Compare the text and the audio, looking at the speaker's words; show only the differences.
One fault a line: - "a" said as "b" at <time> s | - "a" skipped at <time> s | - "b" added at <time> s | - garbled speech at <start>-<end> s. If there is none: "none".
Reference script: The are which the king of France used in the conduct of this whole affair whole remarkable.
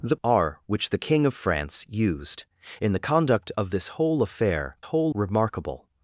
none